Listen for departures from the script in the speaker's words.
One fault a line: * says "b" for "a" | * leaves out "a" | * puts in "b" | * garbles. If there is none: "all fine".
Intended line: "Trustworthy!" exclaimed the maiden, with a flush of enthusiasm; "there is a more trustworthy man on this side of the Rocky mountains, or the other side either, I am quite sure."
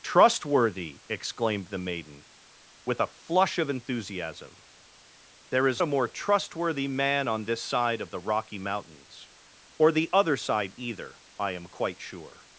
all fine